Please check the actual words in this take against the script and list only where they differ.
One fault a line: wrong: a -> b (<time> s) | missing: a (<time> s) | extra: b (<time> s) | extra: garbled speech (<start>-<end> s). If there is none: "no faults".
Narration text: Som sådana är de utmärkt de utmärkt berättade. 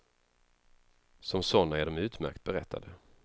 missing: de utmärkt (2.4 s)